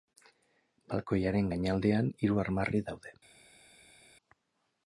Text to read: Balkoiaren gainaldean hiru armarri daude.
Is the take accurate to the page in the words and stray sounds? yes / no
yes